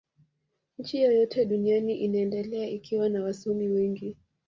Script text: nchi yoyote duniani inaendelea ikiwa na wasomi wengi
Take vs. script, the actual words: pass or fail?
pass